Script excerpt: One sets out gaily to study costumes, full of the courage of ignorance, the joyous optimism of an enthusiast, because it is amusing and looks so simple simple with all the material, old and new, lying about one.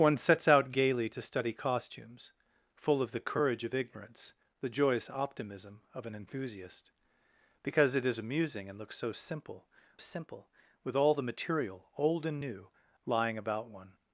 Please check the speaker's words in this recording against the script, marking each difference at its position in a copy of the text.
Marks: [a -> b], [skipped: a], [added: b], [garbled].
One sets out gaily to study costumes, full of the courage of ignorance, the joyous optimism of an enthusiast, because it is amusing and looks so simple simple with all the material, old and new, lying about one.